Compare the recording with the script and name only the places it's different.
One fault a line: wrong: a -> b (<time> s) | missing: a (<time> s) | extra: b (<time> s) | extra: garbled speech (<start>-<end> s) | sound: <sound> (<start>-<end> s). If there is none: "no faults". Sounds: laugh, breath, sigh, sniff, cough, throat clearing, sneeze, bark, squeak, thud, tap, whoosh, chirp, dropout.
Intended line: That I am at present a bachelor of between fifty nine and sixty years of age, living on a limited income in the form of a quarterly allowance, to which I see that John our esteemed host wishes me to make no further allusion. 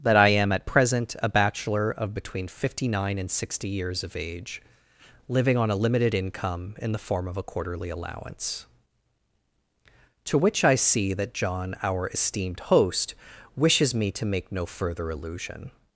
no faults